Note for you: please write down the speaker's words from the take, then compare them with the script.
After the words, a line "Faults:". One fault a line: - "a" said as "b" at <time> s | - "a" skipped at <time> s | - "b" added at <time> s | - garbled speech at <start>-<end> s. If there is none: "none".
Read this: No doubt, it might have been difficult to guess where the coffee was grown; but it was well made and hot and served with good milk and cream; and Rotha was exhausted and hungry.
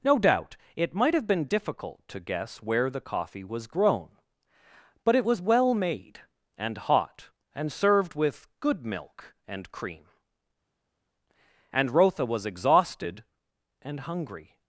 No doubt, it might have been difficult to guess where the coffee was grown; but it was well made and hot and served with good milk and cream; and Rotha was exhausted and hungry.
Faults:
none